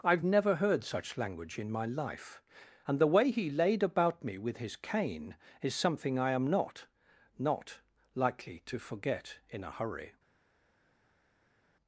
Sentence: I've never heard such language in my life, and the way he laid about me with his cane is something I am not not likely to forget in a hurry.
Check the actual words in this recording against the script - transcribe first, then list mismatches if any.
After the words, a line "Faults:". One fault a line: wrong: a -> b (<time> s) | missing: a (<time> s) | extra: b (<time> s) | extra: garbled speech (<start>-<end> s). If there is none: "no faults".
I've never heard such language in my life, and the way he laid about me with his cane is something I am not not likely to forget in a hurry.
Faults:
no faults